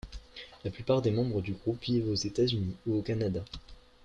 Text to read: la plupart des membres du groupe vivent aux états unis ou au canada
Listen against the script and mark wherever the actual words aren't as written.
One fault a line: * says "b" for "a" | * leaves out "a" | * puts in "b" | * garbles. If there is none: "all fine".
all fine